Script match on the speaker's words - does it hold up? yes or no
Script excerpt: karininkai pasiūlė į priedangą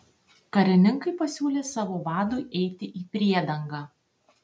no